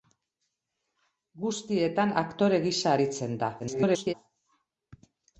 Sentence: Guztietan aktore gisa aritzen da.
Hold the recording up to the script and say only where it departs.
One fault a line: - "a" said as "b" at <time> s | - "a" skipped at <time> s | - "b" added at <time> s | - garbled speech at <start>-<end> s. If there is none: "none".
- garbled speech at 3.6-4.1 s